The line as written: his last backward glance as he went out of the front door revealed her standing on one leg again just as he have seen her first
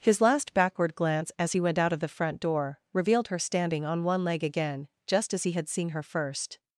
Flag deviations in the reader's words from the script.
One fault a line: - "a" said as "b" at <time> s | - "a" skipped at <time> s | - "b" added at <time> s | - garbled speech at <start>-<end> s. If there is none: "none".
- "have" said as "had" at 5.5 s